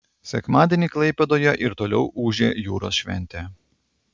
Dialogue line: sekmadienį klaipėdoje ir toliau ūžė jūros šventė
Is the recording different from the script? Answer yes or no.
no